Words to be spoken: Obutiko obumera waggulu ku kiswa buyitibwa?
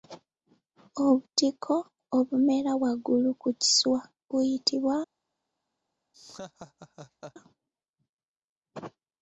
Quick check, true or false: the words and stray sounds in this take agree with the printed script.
false